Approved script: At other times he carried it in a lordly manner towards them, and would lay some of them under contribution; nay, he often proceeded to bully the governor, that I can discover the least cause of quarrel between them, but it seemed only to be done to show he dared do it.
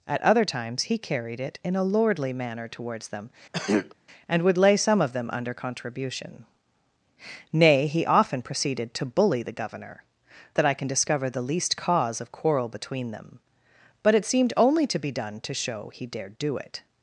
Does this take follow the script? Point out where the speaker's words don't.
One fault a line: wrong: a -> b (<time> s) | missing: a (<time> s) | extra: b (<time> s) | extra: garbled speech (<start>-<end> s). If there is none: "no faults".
no faults